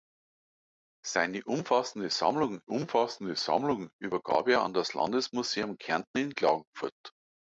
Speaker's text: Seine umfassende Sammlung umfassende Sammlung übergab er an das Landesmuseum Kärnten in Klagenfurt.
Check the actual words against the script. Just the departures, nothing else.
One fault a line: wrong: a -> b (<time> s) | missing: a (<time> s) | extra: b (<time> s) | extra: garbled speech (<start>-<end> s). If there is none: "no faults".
no faults